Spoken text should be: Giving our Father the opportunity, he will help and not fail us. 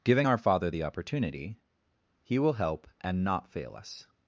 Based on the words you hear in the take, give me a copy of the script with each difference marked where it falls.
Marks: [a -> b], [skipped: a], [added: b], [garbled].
Giving our Father the opportunity, he will help and not fail us.